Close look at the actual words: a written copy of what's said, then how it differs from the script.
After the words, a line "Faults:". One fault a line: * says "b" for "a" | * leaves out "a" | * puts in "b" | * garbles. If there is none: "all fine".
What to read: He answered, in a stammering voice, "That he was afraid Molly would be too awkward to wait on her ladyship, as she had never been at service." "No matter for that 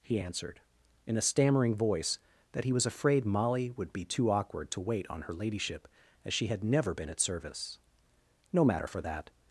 He answered, in a stammering voice, "That he was afraid Molly would be too awkward to wait on her ladyship, as she had never been at service." "No matter for that
Faults:
all fine